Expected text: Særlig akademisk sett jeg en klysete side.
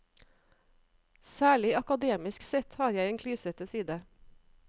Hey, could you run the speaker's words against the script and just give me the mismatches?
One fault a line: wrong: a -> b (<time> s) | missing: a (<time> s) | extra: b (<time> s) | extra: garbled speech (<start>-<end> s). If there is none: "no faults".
extra: har (2.8 s)